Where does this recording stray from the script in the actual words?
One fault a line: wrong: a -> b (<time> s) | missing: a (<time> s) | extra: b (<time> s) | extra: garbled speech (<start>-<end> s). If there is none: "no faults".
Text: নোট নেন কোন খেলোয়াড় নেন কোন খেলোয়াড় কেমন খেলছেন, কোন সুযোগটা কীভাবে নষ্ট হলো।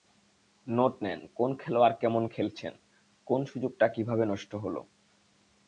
missing: নেন কোন খেলোয়াড় (1.9 s)